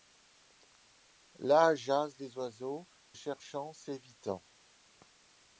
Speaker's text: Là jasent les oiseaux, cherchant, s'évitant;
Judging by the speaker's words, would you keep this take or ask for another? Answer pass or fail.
pass